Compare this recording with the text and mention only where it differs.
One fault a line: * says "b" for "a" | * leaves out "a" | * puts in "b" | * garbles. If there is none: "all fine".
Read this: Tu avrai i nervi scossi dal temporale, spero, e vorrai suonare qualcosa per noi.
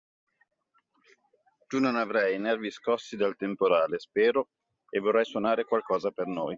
* puts in "non"